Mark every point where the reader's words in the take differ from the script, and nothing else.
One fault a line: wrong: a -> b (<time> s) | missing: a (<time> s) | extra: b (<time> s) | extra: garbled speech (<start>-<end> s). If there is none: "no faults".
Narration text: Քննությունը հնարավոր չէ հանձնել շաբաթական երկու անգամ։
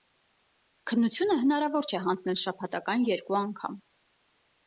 no faults